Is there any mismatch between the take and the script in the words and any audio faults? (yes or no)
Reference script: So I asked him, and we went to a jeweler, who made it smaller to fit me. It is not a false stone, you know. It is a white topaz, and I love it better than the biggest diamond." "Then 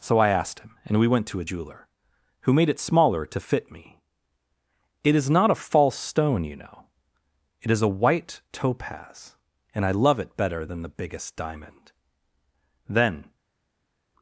no